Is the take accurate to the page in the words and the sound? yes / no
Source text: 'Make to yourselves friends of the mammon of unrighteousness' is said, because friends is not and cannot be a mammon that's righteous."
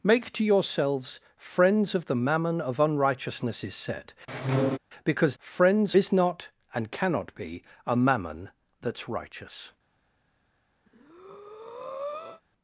no